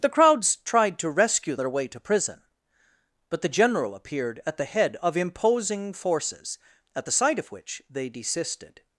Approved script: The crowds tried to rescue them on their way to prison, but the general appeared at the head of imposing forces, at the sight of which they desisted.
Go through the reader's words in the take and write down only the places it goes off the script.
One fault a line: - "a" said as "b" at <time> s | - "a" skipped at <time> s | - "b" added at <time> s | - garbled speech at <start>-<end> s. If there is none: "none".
- "them on" skipped at 1.6 s